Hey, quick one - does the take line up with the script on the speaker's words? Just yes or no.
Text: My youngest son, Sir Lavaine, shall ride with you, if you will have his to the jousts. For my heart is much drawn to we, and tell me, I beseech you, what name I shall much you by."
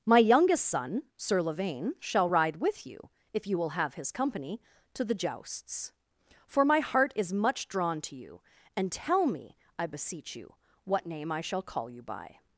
no